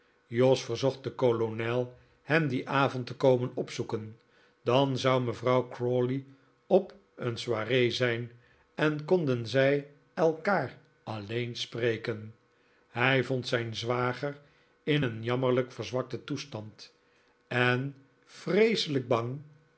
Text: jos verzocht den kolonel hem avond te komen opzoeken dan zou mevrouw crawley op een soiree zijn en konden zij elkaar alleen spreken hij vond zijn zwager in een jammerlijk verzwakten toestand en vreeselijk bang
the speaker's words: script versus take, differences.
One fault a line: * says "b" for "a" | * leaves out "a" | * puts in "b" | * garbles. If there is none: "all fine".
* puts in "dien"